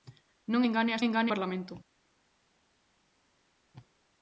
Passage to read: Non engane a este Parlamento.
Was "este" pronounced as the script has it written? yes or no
no